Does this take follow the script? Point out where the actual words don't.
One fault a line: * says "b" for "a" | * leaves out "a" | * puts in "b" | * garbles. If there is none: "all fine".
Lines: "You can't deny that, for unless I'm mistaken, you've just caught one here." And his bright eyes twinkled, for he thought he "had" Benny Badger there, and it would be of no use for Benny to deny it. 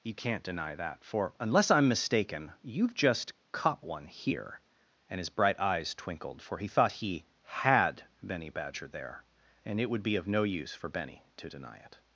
all fine